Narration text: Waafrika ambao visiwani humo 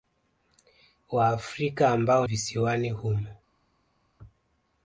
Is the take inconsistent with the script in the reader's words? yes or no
no